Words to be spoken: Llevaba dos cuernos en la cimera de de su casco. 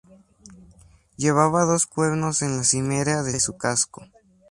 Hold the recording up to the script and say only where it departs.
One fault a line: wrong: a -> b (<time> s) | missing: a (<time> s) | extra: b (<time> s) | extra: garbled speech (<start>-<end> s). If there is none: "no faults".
no faults